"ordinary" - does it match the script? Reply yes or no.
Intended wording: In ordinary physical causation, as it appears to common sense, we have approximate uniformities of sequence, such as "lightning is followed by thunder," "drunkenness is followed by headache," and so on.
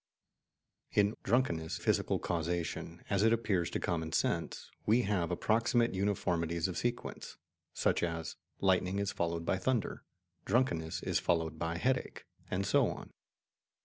no